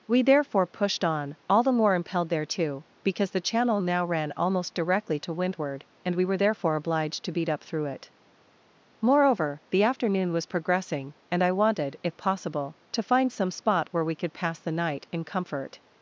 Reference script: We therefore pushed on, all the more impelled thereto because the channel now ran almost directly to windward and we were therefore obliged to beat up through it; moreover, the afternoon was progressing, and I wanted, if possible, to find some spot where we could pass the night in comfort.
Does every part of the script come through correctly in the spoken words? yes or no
yes